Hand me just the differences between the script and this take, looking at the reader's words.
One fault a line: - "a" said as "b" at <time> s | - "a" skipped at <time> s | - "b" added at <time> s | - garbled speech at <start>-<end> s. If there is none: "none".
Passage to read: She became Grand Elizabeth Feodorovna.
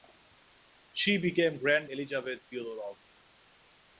none